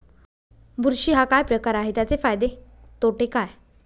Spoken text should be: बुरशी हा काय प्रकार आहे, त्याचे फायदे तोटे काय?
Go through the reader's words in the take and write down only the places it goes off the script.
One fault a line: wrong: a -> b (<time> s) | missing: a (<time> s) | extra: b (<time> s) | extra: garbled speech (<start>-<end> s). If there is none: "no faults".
no faults